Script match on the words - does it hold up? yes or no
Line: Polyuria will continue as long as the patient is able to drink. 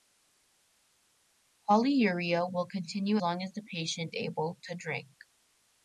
no